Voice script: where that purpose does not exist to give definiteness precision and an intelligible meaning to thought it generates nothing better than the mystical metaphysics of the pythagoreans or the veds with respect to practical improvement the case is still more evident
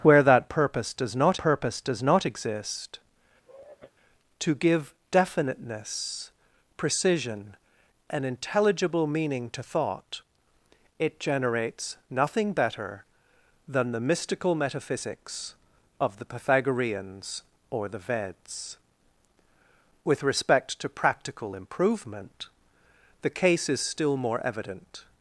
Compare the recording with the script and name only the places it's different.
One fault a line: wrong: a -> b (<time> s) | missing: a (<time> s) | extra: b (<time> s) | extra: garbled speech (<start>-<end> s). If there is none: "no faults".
extra: purpose does not (1.4 s)
missing: and (7.6 s)